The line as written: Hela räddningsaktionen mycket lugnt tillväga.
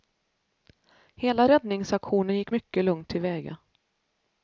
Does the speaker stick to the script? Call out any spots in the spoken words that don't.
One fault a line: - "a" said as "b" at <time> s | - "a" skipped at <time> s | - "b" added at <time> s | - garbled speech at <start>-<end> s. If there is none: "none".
- "gick" added at 2.4 s